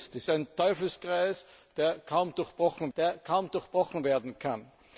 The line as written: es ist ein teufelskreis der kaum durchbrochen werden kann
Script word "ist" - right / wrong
wrong